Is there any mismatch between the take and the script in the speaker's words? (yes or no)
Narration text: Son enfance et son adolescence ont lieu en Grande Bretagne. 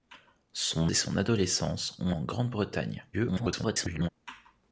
yes